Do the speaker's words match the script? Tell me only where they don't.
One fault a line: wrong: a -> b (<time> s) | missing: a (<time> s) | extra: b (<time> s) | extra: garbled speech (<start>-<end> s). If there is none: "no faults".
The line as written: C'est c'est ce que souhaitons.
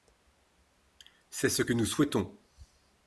missing: c'est (1.5 s)
extra: nous (1.7 s)